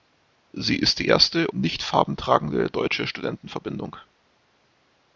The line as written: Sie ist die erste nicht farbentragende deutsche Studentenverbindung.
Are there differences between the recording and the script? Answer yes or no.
no